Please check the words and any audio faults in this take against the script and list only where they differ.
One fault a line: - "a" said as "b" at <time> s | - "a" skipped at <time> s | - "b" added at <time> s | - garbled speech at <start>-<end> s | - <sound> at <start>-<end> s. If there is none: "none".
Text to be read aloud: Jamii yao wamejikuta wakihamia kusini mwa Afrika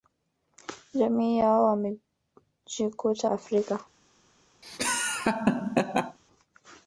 - "wakihamia kusini mwa" skipped at 3.3 s
- laugh at 4.6-6.2 s